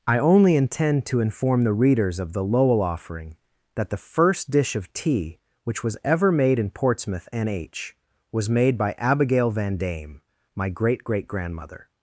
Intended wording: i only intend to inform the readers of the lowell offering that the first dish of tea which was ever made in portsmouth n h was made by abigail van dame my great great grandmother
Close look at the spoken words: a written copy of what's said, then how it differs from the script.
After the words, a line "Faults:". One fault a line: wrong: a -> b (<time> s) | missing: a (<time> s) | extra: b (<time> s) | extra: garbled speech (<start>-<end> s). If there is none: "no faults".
i only intend to inform the readers of the lowell offering that the first dish of tea which was ever made in portsmouth n h was made by abigail van dame my great great grandmother
Faults:
no faults